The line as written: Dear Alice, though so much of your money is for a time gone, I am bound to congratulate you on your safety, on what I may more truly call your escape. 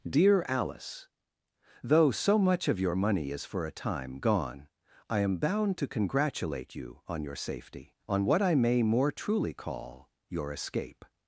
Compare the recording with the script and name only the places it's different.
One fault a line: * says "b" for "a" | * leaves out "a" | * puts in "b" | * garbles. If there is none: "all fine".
all fine